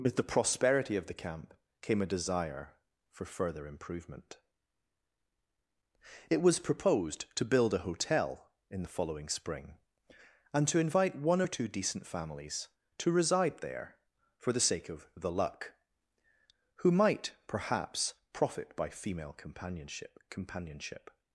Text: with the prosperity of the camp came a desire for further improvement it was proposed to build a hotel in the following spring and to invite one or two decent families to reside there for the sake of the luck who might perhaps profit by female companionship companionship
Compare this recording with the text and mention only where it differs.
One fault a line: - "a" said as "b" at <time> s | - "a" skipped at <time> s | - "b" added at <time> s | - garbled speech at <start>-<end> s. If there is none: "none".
none